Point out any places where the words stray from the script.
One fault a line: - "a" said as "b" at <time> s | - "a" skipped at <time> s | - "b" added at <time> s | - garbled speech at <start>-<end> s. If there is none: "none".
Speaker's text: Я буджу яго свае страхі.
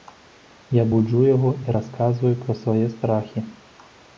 - "і расказваю пра" added at 1.6 s